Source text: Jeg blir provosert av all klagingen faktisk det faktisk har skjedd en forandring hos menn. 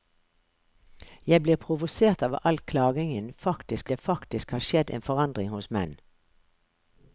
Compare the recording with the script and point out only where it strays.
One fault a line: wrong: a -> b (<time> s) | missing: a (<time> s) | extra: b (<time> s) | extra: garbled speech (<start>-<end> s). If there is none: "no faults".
no faults